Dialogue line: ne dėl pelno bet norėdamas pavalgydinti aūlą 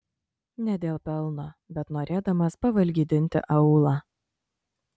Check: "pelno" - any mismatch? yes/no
no